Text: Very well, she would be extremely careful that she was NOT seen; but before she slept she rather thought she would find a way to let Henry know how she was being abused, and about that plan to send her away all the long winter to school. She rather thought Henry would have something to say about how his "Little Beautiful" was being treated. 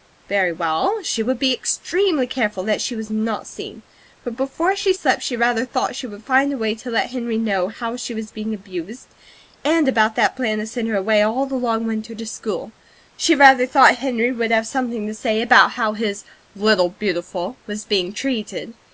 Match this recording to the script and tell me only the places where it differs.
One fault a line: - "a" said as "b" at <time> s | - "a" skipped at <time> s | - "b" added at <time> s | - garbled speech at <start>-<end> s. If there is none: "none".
none